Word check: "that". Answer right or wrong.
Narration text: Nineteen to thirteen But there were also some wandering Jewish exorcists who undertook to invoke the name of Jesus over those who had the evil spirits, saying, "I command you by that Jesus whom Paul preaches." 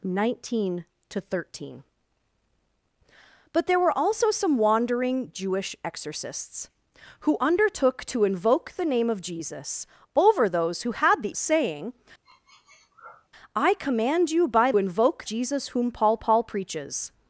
wrong